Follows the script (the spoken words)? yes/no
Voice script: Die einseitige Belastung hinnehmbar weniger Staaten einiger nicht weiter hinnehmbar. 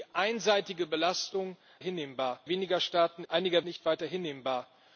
yes